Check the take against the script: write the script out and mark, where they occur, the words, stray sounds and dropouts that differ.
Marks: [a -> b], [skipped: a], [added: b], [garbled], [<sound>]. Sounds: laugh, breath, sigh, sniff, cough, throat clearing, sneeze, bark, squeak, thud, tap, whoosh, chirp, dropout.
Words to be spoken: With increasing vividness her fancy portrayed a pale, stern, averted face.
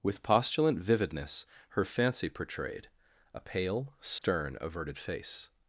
With [increasing -> postulant] vividness her fancy portrayed a pale, stern, [dropout] averted face.